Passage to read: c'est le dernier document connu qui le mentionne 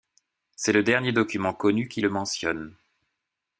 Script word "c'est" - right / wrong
right